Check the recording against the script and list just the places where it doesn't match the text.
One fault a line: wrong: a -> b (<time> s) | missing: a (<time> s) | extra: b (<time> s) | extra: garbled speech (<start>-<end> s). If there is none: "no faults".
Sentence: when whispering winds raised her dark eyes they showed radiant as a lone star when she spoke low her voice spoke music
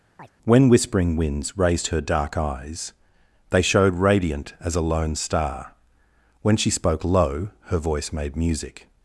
wrong: spoke -> made (8.1 s)